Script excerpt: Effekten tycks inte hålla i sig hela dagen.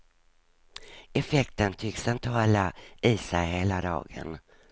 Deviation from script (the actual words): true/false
false